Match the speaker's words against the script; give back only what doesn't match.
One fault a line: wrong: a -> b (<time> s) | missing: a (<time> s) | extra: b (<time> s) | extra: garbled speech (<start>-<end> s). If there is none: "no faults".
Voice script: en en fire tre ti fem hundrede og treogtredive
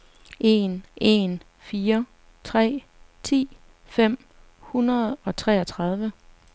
no faults